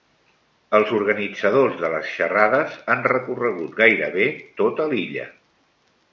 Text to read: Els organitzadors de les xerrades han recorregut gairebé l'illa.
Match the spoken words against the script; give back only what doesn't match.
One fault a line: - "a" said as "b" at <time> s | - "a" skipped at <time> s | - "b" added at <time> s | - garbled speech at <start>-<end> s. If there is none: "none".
- "tota" added at 4.6 s